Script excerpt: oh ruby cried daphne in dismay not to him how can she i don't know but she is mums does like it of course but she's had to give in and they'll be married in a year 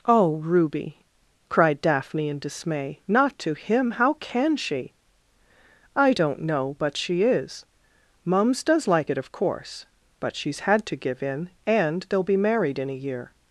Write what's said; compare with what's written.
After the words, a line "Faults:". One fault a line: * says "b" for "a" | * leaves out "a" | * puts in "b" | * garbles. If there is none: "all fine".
oh ruby cried daphne in dismay not to him how can she i don't know but she is mums does like it of course but she's had to give in and they'll be married in a year
Faults:
all fine